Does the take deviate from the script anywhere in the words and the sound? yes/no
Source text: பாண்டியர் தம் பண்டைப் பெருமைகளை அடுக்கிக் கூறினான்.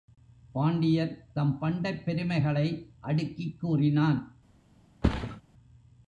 yes